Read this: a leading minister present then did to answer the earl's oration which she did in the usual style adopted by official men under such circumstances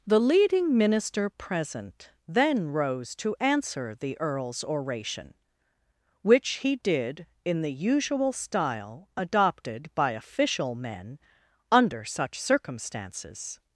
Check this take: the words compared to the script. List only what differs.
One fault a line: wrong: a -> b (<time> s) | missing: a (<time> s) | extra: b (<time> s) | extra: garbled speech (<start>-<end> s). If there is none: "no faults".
wrong: a -> the (0.1 s)
wrong: did -> rose (2.7 s)
wrong: she -> he (6.6 s)